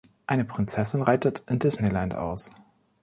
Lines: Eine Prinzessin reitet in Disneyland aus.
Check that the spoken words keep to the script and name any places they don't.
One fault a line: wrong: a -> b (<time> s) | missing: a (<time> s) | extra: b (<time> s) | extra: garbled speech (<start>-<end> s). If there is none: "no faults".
no faults